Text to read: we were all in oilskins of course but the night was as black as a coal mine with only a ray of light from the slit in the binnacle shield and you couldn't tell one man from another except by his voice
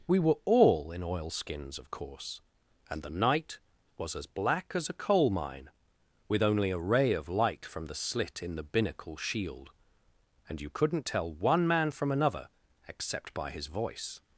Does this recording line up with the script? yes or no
no